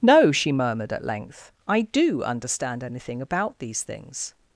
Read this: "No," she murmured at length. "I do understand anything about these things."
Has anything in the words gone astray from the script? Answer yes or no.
no